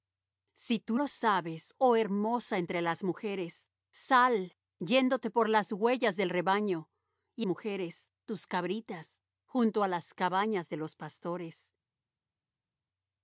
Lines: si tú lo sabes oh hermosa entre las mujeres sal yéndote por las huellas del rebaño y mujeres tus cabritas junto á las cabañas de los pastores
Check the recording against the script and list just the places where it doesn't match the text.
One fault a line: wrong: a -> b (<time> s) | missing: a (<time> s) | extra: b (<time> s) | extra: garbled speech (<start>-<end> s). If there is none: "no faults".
no faults